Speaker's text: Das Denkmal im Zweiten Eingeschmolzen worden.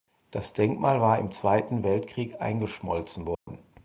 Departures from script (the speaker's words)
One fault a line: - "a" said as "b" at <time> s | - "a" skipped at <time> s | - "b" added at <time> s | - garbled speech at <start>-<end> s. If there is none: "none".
- "war" added at 1.0 s
- "Weltkrieg" added at 1.8 s